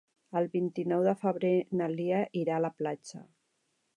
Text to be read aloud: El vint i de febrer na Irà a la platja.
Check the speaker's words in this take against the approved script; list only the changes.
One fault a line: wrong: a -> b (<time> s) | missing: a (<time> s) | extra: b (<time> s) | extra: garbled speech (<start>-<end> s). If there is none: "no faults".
extra: nou (0.9 s)
extra: Lia (1.9 s)